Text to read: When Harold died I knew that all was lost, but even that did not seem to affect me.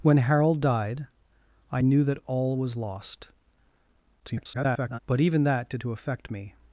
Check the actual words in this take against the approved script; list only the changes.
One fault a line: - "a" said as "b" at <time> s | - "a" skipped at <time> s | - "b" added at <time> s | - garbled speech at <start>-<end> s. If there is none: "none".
- garbled speech at 4.2-5.0 s
- "not seem" skipped at 5.8 s